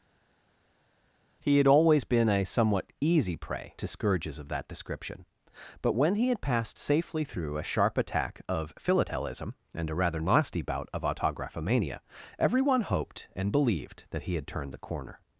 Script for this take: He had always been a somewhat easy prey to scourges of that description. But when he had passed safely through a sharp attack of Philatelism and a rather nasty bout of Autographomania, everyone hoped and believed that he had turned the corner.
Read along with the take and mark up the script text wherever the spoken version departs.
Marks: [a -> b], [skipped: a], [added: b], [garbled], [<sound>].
He had always been a somewhat easy prey to scourges of that description. But when he had passed safely through a sharp attack of Philatelism and a rather nasty bout of Autographomania, everyone hoped and believed that he had turned the corner.